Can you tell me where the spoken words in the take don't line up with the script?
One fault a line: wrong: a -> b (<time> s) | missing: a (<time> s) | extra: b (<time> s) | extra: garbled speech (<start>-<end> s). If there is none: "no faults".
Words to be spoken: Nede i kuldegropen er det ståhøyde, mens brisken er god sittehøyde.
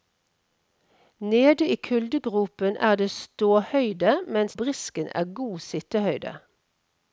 no faults